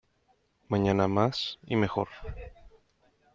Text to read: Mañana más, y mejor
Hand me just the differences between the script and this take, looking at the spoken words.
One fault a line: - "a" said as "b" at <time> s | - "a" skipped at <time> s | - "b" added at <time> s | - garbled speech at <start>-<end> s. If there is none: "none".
none